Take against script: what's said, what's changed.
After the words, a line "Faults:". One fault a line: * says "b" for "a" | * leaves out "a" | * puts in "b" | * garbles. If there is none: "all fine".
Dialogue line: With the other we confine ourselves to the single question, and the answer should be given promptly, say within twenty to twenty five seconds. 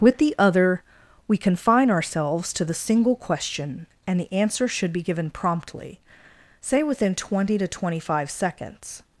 With the other we confine ourselves to the single question, and the answer should be given promptly, say within twenty to twenty five seconds.
Faults:
all fine